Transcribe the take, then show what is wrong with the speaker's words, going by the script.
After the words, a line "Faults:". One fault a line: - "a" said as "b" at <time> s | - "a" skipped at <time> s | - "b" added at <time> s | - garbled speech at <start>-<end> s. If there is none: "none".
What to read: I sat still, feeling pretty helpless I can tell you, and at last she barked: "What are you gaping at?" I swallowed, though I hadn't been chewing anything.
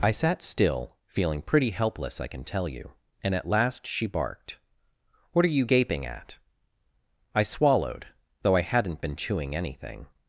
I sat still, feeling pretty helpless I can tell you, and at last she barked: "What are you gaping at?" I swallowed, though I hadn't been chewing anything.
Faults:
none